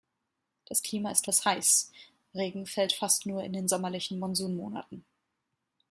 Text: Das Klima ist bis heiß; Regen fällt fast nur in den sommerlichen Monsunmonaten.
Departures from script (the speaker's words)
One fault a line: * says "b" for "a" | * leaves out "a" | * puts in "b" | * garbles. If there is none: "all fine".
all fine